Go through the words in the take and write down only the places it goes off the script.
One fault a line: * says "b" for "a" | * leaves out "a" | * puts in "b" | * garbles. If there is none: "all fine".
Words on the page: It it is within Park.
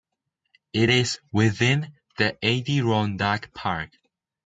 * leaves out "it"
* puts in "the Adirondack"